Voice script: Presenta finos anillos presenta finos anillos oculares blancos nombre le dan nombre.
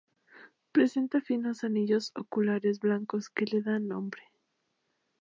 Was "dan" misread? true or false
false